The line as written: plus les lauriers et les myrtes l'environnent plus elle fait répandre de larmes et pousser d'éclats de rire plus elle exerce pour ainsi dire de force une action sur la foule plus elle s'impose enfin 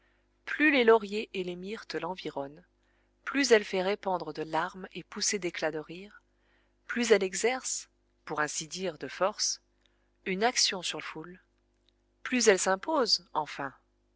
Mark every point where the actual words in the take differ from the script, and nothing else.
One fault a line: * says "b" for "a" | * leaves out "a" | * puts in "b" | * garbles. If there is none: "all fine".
* leaves out "la"